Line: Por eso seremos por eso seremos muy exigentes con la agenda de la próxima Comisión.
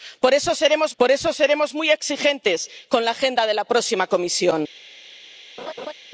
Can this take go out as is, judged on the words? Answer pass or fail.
pass